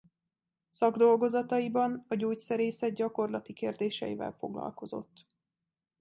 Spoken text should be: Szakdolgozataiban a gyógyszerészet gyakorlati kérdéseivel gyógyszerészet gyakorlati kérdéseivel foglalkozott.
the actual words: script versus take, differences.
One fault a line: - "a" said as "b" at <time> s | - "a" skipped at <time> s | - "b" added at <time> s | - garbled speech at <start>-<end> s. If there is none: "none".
- "gyógyszerészet gyakorlati kérdéseivel" skipped at 4.4 s